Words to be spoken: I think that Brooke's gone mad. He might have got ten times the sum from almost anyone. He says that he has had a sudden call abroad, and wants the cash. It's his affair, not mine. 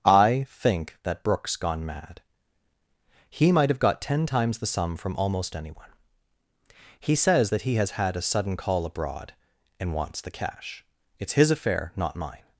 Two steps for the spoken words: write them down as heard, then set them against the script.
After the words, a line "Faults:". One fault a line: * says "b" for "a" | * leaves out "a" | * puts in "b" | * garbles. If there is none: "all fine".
I think that Brooke's gone mad. He might have got ten times the sum from almost anyone. He says that he has had a sudden call abroad, and wants the cash. It's his affair, not mine.
Faults:
all fine